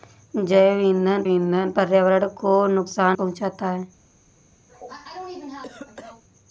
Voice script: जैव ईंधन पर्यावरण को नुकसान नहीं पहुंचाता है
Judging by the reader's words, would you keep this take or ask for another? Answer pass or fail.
fail